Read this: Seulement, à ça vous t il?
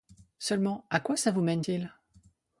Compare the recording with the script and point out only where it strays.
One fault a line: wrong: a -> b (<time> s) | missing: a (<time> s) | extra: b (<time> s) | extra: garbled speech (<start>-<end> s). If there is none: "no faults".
extra: quoi (1.0 s)
extra: mène (1.4 s)